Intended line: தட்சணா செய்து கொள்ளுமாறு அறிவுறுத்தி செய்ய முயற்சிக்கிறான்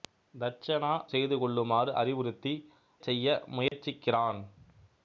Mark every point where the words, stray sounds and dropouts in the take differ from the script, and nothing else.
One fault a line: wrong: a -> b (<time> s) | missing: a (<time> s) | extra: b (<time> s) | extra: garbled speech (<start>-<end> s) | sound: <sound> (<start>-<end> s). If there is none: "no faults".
sound: dropout (3.7-3.7 s)